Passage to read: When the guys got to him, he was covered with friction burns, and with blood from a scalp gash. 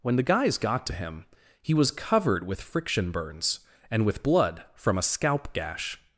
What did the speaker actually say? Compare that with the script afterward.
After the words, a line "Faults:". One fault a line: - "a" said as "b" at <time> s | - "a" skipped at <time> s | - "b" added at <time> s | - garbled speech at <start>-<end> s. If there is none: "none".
When the guys got to him, he was covered with friction burns, and with blood from a scalp gash.
Faults:
none